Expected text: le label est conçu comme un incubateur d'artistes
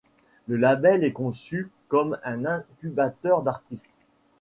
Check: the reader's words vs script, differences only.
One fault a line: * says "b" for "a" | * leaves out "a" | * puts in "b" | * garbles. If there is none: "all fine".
all fine